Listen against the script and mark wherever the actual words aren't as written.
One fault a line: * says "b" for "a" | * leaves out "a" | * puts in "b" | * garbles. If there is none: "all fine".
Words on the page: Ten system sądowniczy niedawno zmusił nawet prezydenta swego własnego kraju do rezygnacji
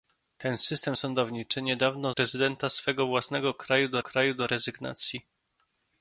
* leaves out "zmusił nawet"
* puts in "kraju do"